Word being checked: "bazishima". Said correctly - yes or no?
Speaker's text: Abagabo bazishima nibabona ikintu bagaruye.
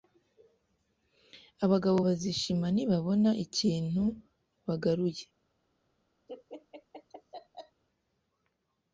yes